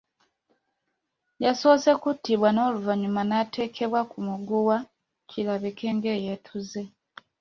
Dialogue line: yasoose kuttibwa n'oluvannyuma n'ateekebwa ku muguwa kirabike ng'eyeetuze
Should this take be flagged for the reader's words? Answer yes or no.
no